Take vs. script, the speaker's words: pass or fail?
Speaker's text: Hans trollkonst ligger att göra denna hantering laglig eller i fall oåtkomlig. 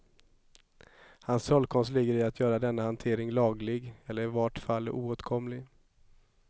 fail